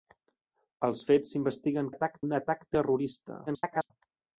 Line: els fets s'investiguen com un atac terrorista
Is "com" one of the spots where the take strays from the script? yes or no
yes